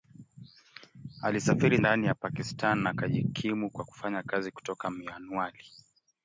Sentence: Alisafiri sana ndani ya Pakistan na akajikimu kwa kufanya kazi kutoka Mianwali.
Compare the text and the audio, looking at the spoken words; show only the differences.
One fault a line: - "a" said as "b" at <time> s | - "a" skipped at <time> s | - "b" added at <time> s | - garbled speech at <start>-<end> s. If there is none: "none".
- "sana" skipped at 1.8 s